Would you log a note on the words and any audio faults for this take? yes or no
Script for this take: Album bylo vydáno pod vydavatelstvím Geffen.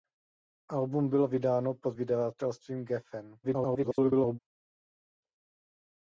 yes